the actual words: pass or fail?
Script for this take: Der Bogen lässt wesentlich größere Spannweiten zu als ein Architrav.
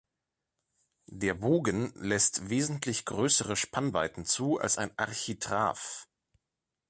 pass